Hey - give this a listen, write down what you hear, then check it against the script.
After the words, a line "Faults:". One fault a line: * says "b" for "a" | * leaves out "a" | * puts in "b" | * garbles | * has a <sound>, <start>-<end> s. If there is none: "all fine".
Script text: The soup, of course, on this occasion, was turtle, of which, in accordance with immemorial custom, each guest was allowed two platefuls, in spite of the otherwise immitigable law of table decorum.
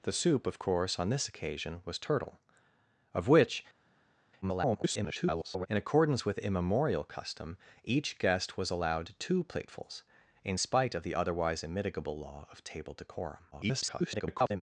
The soup, of course, on this occasion, was turtle, of which, [garbled] in accordance with immemorial custom, each guest was allowed two platefuls, in spite of the otherwise immitigable law of table decorum. [garbled]
Faults:
* garbles
* garbles